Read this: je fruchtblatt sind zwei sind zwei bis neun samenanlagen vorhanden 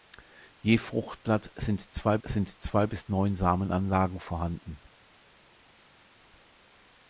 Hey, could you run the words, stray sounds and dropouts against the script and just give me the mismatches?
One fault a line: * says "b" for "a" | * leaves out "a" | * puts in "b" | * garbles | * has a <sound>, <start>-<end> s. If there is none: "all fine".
all fine